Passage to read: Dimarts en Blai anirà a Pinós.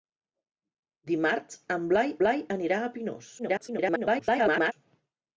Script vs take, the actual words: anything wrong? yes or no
yes